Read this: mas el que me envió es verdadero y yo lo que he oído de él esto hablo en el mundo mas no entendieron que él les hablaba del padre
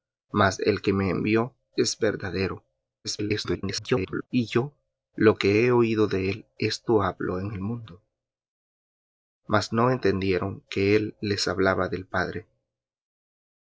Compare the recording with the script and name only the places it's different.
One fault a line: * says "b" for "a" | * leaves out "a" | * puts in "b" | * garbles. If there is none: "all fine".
* garbles